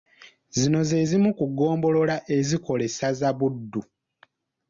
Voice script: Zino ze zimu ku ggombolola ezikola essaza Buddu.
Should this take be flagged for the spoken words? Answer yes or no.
no